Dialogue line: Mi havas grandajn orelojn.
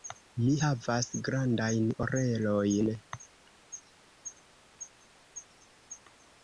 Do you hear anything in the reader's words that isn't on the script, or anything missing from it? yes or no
no